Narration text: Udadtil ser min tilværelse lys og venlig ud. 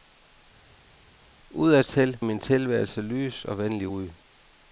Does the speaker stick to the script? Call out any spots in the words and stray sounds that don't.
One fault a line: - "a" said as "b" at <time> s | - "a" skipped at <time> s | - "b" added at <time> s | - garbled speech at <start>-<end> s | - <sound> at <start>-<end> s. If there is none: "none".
- "ser" skipped at 2.2 s